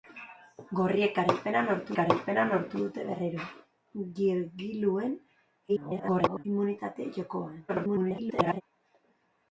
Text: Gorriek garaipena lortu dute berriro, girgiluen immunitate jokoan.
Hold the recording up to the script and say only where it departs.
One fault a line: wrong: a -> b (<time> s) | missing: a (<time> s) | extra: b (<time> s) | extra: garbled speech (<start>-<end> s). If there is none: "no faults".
extra: garaipena lortu (2.0 s)
extra: garbled speech (5.7-6.4 s)
extra: garbled speech (7.7-8.6 s)